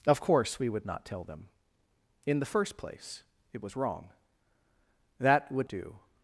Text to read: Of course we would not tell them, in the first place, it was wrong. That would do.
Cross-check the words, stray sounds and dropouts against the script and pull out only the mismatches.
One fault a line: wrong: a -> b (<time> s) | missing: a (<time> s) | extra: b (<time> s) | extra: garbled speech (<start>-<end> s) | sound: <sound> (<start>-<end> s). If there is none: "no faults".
no faults